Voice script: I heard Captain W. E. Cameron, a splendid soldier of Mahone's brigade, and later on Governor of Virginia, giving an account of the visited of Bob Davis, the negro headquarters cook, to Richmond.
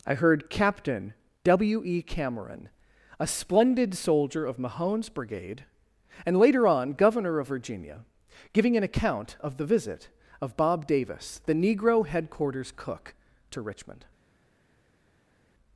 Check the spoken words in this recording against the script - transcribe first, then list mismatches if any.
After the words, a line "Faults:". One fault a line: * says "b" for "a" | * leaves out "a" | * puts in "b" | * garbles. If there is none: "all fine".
I heard Captain W. E. Cameron, a splendid soldier of Mahone's brigade, and later on Governor of Virginia, giving an account of the visit of Bob Davis, the negro headquarters cook, to Richmond.
Faults:
* says "visit" for "visited"